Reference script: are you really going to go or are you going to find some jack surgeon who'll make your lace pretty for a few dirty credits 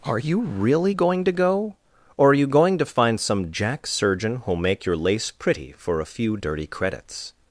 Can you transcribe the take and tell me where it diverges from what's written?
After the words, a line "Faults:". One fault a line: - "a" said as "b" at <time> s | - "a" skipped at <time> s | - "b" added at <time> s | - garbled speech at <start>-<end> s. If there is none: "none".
are you really going to go or are you going to find some jack surgeon who'll make your lace pretty for a few dirty credits
Faults:
none